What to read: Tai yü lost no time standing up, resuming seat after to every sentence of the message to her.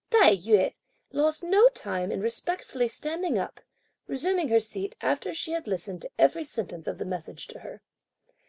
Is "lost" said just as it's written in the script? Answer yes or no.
yes